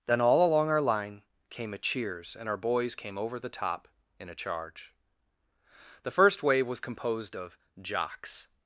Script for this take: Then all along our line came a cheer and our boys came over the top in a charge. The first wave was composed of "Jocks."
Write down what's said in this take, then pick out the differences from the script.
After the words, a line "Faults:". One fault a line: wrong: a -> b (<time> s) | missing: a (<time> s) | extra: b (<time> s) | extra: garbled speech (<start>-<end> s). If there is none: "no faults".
Then all along our line came a cheers and our boys came over the top in a charge. The first wave was composed of "Jocks."
Faults:
wrong: cheer -> cheers (1.8 s)